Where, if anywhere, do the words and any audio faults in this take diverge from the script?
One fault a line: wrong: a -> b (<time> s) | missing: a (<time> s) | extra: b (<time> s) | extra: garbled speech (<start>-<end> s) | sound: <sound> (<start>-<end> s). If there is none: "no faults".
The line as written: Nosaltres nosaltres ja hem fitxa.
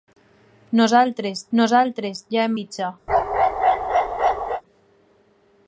sound: bark (3.1-4.6 s)